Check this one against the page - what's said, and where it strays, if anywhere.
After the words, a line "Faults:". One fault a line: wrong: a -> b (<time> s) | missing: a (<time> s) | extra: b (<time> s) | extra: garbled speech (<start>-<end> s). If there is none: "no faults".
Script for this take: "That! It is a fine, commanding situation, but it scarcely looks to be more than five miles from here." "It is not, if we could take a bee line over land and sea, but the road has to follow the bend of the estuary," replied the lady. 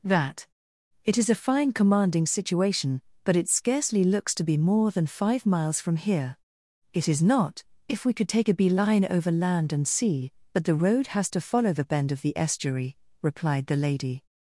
"That! It is a fine, commanding situation, but it scarcely looks to be more than five miles from here." "It is not, if we could take a bee line over land and sea, but the road has to follow the bend of the estuary," replied the lady.
Faults:
no faults